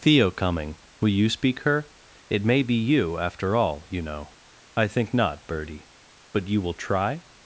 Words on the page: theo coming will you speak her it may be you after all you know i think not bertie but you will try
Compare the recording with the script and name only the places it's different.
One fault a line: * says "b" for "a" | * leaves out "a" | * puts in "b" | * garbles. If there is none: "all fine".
all fine